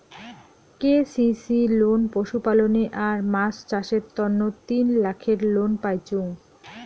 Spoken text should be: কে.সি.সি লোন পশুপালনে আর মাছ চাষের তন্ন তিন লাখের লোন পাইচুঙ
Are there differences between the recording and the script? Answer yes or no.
no